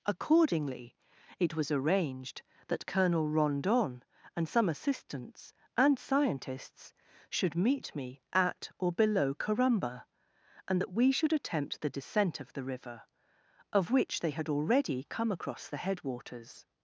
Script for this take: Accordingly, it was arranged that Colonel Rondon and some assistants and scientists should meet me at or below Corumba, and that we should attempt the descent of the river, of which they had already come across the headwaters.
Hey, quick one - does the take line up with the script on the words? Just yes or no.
yes